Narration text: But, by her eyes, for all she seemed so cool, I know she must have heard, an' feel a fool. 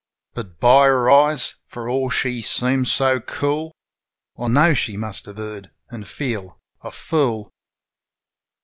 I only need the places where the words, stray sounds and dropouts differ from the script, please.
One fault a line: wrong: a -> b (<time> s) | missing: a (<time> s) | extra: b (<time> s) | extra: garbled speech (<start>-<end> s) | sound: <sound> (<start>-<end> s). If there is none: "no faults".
no faults